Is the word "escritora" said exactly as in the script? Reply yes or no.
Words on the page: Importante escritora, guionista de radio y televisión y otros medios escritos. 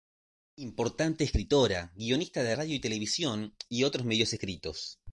yes